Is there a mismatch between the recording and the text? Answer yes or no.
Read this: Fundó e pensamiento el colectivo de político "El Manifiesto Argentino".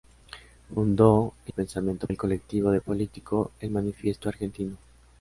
no